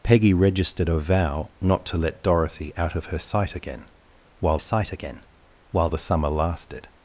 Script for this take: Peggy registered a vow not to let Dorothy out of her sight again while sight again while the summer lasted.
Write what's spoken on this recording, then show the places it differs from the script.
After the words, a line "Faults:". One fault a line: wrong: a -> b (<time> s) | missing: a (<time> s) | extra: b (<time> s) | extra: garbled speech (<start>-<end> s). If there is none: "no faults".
Peggy registered a vow not to let Dorothy out of her sight again while sight again while the summer lasted.
Faults:
no faults